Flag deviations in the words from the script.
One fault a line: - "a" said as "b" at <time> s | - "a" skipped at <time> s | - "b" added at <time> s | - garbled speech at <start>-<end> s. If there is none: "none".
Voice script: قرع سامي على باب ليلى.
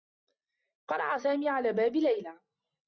none